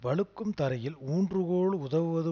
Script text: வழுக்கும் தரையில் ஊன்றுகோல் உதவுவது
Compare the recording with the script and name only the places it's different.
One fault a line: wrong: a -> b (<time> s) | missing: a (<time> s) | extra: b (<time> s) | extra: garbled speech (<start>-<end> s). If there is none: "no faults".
no faults